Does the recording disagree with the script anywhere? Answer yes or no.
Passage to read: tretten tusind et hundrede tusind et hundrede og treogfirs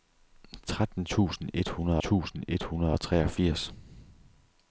no